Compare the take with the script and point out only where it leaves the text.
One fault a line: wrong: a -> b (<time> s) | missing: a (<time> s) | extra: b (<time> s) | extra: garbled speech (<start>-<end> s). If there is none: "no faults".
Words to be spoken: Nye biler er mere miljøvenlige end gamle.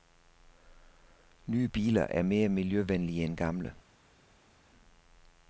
no faults